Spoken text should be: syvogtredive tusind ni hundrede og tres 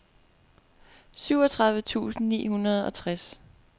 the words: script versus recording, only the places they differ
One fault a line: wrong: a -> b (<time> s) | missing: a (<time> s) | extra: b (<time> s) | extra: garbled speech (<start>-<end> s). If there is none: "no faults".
no faults